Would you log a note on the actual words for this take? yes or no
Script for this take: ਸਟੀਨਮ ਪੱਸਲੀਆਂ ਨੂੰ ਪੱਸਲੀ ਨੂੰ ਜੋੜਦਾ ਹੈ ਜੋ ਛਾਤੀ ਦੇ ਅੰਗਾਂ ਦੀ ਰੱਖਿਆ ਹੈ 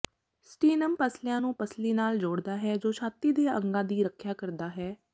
yes